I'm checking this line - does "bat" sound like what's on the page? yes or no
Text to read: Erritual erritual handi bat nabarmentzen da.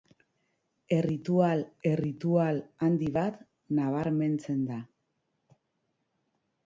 yes